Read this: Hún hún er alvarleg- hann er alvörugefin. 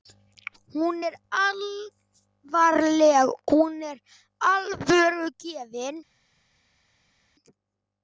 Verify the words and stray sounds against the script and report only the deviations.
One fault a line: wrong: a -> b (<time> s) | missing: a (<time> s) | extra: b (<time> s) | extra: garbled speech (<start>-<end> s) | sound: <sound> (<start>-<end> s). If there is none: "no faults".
missing: hún (1.0 s)
wrong: hann -> hún (3.5 s)